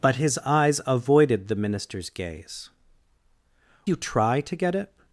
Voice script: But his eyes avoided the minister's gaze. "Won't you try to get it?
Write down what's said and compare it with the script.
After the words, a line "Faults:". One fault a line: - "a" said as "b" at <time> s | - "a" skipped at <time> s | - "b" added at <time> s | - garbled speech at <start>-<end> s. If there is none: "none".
But his eyes avoided the minister's gaze. "You try to get it?
Faults:
- "Won't" skipped at 2.7 s